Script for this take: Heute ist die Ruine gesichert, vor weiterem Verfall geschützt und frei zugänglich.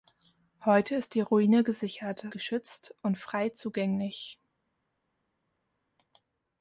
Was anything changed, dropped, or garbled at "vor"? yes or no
yes